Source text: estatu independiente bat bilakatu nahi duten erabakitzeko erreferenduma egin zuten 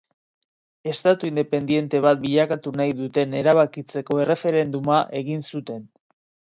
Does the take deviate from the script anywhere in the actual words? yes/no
no